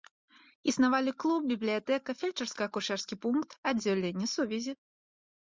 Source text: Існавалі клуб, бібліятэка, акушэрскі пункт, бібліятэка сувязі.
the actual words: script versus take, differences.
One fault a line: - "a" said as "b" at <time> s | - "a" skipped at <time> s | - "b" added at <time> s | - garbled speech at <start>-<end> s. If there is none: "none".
- "фельчарска" added at 2.2 s
- "бібліятэка" said as "аддзяленне" at 3.7 s